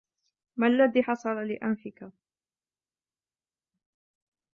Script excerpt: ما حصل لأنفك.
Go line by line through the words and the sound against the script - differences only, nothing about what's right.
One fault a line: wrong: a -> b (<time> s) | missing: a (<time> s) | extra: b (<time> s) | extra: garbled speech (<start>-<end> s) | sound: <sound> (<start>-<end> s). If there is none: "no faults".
extra: الذي (0.7 s)